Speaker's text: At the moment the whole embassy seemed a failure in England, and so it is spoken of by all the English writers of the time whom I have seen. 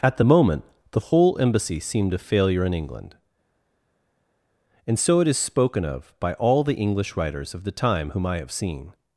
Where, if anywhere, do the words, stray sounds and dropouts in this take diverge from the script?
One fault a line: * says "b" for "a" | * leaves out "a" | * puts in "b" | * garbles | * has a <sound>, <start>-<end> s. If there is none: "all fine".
all fine